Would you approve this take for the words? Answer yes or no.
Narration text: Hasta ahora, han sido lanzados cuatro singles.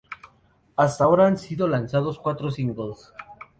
yes